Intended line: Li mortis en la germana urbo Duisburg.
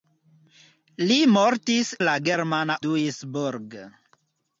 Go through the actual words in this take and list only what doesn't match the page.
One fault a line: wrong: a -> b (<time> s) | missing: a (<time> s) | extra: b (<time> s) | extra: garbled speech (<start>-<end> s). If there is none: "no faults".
missing: en (1.9 s)
missing: urbo (2.8 s)